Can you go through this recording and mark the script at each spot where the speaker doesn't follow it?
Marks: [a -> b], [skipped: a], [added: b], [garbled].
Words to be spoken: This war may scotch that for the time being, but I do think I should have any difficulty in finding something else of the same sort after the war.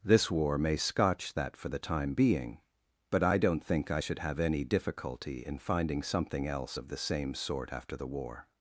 This war may scotch that for the time being, but I [do -> don't] think I should have any difficulty in finding something else of the same sort after the war.